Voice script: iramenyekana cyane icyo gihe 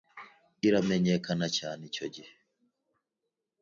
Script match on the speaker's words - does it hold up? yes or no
yes